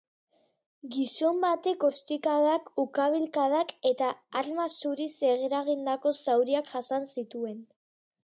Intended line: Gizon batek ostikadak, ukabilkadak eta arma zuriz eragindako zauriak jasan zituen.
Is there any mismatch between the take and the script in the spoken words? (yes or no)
no